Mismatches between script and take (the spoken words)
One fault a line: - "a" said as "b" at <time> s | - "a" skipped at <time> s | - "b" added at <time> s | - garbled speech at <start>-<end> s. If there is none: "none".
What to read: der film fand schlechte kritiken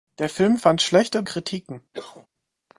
none